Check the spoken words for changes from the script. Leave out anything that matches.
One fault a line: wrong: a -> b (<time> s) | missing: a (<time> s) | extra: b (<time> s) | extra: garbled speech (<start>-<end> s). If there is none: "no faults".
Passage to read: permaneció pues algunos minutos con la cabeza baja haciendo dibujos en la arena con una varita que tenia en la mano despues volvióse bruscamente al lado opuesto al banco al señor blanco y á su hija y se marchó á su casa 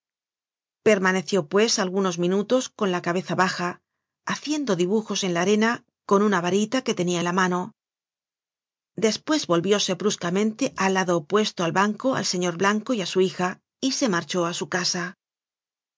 no faults